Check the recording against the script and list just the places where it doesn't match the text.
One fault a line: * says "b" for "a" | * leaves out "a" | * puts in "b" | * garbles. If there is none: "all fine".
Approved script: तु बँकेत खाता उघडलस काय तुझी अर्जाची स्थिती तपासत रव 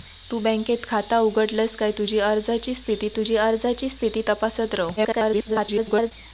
* puts in "तुझी अर्जाची स्थिती"
* garbles